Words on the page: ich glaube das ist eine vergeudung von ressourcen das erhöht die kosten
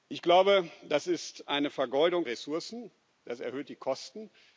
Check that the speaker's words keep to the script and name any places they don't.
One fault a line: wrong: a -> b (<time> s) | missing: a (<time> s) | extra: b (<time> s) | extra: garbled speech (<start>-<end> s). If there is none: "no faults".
missing: von (2.3 s)